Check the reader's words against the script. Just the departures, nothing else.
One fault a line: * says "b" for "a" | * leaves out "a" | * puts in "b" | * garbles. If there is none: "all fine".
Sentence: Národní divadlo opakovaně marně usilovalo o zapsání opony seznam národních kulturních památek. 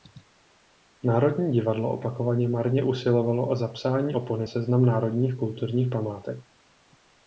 all fine